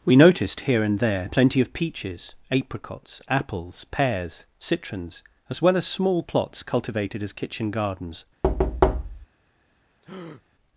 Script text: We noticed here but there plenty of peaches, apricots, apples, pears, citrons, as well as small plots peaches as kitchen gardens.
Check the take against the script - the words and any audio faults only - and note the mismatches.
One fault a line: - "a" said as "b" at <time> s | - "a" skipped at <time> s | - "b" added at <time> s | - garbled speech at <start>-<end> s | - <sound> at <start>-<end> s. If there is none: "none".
- "but" said as "and" at 0.8 s
- "peaches" said as "cultivated" at 6.6 s
- thud at 8.4-9.3 s
- breath at 10.0-10.4 s